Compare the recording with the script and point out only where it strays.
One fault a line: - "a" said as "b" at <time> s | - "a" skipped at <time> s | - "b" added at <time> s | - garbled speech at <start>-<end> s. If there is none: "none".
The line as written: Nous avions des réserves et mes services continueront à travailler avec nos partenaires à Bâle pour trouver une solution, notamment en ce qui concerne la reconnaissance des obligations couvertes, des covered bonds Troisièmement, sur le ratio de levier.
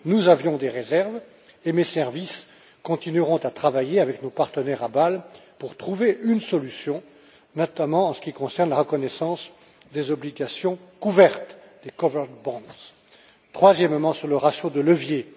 none